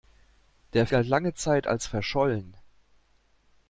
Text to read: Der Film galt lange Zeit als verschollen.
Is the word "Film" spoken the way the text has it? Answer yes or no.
no